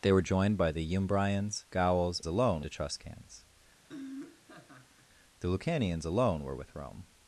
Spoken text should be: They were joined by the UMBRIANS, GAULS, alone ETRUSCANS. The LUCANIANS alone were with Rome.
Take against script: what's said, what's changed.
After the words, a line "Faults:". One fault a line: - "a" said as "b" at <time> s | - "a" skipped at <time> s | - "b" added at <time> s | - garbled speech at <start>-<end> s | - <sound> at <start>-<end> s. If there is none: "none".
They were joined by the UMBRIANS, GAULS, alone ETRUSCANS. The LUCANIANS alone were with Rome.
Faults:
- laugh at 3.8-5.1 s